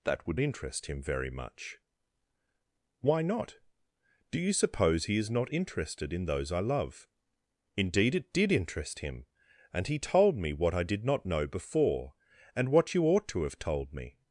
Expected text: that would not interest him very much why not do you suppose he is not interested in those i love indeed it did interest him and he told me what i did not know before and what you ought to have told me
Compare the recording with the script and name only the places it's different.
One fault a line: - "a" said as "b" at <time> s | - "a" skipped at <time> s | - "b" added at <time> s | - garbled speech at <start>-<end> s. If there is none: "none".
- "not" skipped at 0.4 s